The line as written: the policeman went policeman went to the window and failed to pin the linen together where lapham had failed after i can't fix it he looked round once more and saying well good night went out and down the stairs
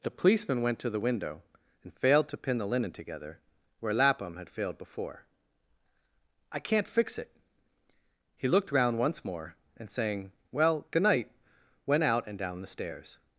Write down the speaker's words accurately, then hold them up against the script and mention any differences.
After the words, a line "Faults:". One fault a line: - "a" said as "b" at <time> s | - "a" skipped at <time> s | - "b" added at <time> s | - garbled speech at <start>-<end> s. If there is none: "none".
the policeman went to the window and failed to pin the linen together where lapham had failed before i can't fix it he looked round once more and saying well good night went out and down the stairs
Faults:
- "policeman went" skipped at 0.8 s
- "after" said as "before" at 4.8 s